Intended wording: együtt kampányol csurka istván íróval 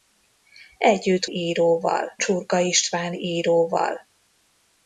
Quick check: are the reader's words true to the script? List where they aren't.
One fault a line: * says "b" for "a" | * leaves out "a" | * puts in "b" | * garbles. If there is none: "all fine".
* says "íróval" for "kampányol"